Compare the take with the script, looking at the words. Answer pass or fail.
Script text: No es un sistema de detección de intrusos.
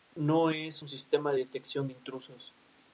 pass